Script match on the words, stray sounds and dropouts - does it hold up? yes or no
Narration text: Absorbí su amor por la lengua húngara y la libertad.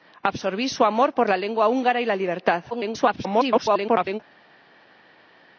no